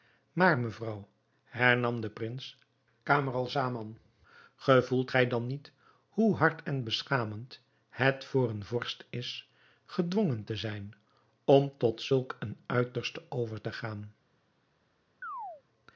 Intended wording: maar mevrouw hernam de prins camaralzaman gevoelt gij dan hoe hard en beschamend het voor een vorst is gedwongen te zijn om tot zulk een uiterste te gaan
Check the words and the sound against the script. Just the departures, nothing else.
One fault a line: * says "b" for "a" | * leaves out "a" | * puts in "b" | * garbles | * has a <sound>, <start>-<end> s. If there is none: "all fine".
* puts in "niet"
* puts in "over"
* has a chirp, 15.2-15.6 s